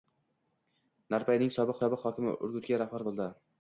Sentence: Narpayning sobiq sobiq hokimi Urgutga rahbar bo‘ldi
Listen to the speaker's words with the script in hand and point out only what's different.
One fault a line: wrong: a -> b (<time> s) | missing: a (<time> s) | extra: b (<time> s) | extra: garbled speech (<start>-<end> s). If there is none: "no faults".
no faults